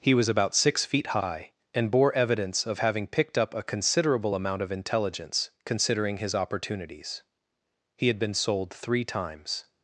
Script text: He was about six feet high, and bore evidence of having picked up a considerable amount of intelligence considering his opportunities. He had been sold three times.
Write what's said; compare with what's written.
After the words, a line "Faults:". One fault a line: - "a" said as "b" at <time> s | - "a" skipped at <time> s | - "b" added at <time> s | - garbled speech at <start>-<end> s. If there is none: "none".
He was about six feet high, and bore evidence of having picked up a considerable amount of intelligence considering his opportunities. He had been sold three times.
Faults:
none